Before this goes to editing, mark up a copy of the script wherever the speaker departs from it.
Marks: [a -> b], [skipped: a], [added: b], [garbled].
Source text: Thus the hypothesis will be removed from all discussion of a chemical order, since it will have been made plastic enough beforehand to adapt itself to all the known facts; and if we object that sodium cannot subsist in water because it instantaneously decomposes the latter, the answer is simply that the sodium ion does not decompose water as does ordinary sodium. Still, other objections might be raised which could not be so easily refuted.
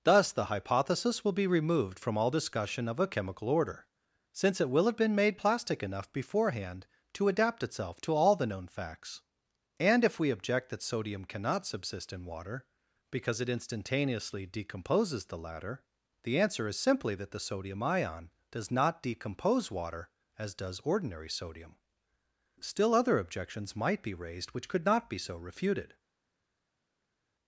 Thus the hypothesis will be removed from all discussion of a chemical order, since it will have been made plastic enough beforehand to adapt itself to all the known facts; and if we object that sodium cannot subsist in water because it instantaneously decomposes the latter, the answer is simply that the sodium ion does not decompose water as does ordinary sodium. Still, other objections might be raised which could not be so [skipped: easily] refuted.